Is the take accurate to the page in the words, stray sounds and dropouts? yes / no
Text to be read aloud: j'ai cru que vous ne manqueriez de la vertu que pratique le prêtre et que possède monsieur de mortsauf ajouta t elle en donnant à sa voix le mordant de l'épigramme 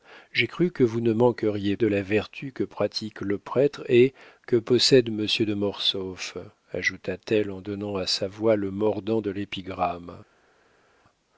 yes